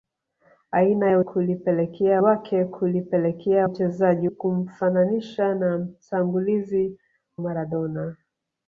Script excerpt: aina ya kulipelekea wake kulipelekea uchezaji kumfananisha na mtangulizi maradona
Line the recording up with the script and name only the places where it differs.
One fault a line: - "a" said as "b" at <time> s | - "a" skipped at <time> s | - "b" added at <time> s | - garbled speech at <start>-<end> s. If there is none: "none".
none